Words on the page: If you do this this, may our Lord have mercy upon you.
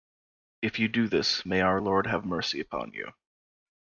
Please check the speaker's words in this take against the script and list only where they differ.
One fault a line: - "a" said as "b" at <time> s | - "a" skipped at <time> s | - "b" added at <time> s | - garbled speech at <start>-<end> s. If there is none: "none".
- "this" skipped at 1.5 s